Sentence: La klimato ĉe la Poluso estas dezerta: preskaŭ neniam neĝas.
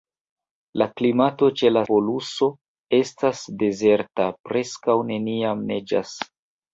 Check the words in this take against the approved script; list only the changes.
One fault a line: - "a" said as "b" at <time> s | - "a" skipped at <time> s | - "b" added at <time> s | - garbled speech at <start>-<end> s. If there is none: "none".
none